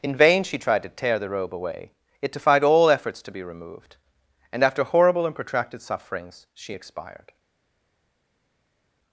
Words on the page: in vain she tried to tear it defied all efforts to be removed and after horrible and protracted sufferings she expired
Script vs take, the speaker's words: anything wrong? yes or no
yes